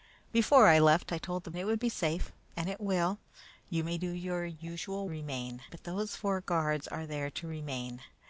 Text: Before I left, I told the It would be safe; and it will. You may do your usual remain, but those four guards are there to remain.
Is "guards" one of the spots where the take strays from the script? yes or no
no